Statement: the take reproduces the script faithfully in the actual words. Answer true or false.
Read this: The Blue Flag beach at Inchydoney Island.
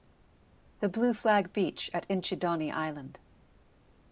true